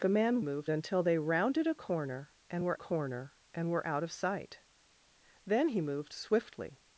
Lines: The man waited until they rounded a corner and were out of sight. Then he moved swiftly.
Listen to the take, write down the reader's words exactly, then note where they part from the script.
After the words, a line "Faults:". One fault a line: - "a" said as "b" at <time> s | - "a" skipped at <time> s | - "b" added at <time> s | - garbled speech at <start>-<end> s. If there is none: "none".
The man moved until they rounded a corner and were corner and were out of sight. Then he moved swiftly.
Faults:
- "waited" said as "moved" at 0.4 s
- "corner and were" added at 2.7 s